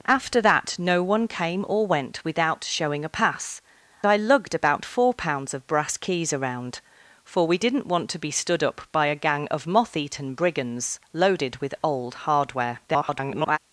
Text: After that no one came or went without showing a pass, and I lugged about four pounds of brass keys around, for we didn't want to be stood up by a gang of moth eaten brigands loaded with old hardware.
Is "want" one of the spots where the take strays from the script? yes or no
no